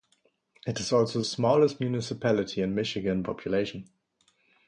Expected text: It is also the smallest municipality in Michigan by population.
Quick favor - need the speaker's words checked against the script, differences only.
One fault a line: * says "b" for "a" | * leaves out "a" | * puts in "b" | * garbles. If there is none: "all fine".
* leaves out "the"
* leaves out "by"